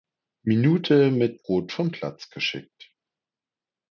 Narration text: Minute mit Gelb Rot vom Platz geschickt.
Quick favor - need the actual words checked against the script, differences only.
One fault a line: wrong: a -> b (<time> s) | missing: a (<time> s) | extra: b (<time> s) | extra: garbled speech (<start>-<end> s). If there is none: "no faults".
missing: Gelb (1.4 s)